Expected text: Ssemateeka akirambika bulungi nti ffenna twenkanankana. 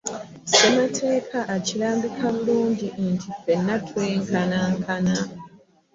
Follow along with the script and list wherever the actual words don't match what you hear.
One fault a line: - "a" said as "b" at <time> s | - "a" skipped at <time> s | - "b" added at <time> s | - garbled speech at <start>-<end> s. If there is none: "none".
none